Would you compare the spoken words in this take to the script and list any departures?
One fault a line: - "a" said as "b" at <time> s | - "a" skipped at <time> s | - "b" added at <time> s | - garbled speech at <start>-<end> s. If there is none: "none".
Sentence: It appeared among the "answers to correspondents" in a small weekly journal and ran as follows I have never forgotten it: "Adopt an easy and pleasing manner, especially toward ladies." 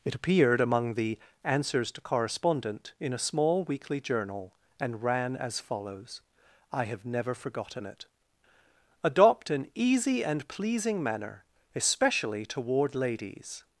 - "correspondents" said as "correspondent" at 2.0 s